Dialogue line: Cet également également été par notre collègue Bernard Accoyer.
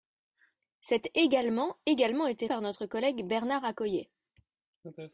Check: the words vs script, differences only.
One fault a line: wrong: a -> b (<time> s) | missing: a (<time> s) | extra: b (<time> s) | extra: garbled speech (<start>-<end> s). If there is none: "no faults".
no faults